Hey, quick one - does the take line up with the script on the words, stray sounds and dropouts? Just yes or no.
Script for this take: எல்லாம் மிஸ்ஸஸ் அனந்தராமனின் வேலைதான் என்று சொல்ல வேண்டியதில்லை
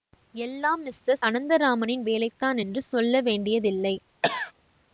no